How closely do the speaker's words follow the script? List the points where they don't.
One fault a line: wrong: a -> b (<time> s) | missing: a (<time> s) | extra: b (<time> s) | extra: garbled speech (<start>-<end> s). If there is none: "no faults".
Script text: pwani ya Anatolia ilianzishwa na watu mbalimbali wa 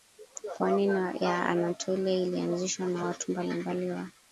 no faults